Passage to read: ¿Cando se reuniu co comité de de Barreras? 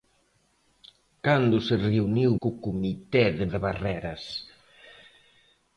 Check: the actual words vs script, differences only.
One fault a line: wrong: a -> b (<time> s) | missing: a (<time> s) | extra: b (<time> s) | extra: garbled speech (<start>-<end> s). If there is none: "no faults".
no faults